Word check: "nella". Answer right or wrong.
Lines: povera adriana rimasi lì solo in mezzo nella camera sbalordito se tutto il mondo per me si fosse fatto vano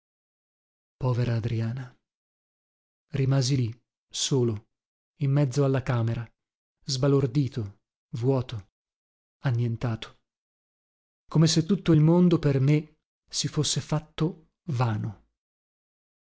wrong